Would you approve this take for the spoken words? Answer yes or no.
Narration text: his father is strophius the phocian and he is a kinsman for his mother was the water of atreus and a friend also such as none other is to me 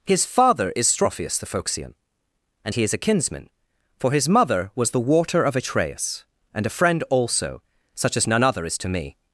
yes